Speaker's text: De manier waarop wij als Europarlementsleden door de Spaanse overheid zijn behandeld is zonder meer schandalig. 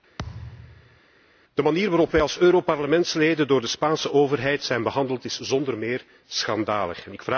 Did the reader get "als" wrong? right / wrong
right